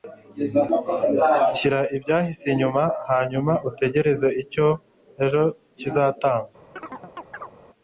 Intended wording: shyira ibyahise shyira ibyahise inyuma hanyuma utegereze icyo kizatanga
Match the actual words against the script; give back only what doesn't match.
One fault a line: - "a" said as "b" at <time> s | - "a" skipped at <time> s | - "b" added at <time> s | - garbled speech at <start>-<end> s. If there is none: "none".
- "shyira ibyahise" skipped at 2.5 s
- "ejo" added at 5.2 s